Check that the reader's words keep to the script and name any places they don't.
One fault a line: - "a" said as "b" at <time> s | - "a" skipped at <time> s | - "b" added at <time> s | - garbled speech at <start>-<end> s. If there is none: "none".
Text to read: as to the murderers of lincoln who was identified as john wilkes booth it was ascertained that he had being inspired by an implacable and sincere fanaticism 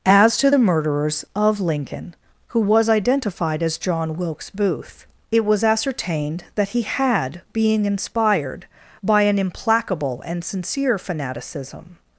none